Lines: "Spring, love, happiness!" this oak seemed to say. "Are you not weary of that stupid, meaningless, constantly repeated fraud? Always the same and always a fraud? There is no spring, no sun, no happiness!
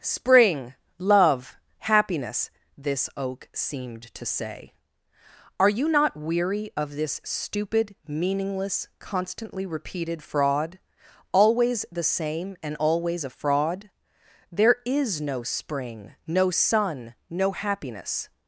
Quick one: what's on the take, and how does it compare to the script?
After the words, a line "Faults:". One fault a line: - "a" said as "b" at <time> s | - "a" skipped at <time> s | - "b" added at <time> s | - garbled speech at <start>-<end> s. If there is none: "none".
"Spring, love, happiness!" this oak seemed to say. "Are you not weary of this stupid, meaningless, constantly repeated fraud? Always the same and always a fraud? There is no spring, no sun, no happiness!
Faults:
- "that" said as "this" at 7.0 s